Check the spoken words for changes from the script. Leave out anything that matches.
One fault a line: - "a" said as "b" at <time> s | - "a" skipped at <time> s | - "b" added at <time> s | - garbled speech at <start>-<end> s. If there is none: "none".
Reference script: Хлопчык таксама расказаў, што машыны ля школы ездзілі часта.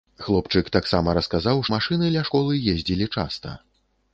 - "што" skipped at 1.6 s